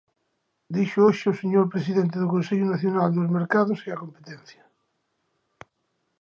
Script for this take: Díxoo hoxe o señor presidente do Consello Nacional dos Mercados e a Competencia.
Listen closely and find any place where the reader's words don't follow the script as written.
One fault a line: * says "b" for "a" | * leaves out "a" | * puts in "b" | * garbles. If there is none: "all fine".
all fine